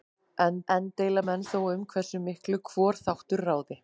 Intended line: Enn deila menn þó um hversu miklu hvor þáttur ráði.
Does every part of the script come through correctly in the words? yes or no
no